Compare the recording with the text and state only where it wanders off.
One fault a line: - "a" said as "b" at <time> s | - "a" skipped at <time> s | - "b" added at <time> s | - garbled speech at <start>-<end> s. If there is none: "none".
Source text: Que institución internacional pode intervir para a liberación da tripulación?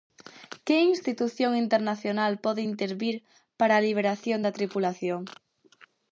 none